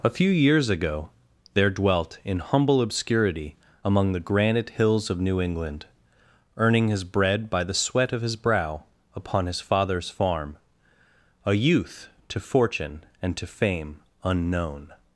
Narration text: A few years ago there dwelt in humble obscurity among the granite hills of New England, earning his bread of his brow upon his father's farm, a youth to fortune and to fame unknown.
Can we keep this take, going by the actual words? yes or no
no